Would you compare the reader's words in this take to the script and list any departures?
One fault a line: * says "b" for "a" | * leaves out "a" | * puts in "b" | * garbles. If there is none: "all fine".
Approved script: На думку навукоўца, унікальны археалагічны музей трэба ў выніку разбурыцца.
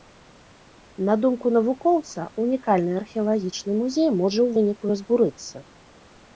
* says "можа" for "трэба"